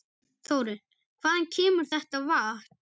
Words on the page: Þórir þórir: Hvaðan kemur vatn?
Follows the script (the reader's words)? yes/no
no